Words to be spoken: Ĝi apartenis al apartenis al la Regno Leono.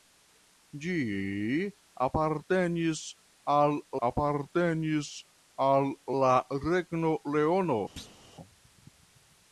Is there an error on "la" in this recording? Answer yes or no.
no